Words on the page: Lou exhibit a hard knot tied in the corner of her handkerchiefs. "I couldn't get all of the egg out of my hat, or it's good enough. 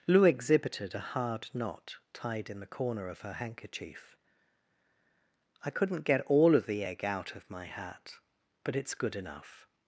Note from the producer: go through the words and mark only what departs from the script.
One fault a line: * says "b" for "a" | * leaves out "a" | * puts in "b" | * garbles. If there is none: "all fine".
* says "exhibited" for "exhibit"
* says "handkerchief" for "handkerchiefs"
* says "but" for "or"